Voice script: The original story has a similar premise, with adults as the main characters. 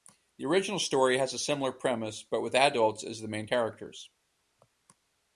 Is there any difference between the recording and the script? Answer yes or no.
yes